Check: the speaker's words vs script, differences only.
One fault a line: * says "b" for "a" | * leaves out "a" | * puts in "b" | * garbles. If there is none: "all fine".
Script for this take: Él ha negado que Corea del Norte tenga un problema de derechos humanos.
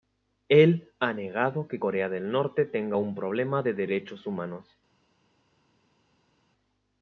all fine